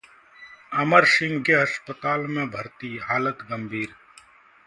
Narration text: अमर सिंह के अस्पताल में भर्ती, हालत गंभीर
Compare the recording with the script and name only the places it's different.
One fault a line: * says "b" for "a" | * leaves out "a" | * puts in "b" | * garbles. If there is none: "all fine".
all fine